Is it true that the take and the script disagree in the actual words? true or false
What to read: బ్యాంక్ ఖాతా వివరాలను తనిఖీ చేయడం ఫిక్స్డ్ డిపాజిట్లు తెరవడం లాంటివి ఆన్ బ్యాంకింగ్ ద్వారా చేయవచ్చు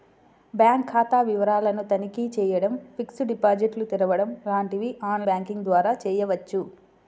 false